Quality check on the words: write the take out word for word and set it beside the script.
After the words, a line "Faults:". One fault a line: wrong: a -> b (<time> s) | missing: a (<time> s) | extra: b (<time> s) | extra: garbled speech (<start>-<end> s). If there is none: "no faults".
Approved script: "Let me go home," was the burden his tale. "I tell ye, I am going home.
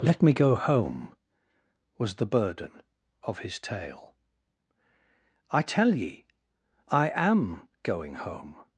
"Let me go home," was the burden of his tale. "I tell ye, I am going home.
Faults:
extra: of (3.2 s)